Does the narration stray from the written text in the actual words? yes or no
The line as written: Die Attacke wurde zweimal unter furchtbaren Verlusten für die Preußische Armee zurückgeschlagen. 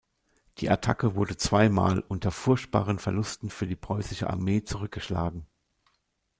no